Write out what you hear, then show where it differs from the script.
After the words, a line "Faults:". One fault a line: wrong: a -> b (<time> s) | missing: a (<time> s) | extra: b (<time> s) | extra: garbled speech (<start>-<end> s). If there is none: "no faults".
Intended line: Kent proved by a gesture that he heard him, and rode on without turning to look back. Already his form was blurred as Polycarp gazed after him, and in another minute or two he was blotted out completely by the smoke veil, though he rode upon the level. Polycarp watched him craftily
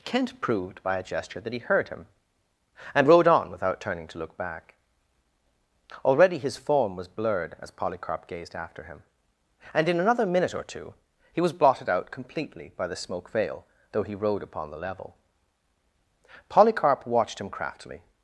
Kent proved by a gesture that he heard him, and rode on without turning to look back. Already his form was blurred as Polycarp gazed after him, and in another minute or two he was blotted out completely by the smoke veil, though he rode upon the level. Polycarp watched him craftily
Faults:
no faults